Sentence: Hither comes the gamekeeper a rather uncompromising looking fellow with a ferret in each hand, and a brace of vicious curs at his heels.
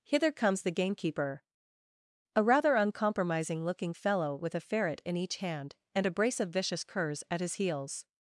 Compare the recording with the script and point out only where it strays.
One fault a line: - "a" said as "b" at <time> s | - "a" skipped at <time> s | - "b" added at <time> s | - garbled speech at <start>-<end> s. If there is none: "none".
none